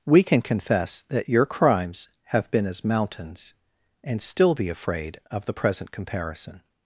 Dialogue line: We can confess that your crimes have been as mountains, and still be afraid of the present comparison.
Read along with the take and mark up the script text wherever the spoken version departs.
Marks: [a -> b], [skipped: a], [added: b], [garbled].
We can confess that your crimes have been as mountains, and still be afraid of the present comparison.